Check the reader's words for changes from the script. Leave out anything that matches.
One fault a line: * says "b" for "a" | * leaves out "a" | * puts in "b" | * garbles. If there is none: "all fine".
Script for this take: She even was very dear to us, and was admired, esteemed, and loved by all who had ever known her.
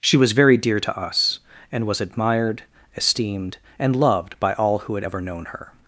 * leaves out "even"